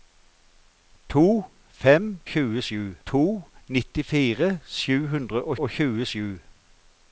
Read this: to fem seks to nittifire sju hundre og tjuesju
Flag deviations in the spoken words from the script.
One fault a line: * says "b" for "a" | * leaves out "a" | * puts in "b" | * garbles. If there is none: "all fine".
* says "tjuesju" for "seks"
* puts in "og"